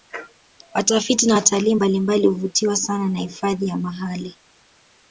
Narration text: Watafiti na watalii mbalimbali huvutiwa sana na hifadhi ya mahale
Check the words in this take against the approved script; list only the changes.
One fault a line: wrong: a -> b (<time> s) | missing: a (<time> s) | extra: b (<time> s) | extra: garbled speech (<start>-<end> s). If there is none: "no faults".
no faults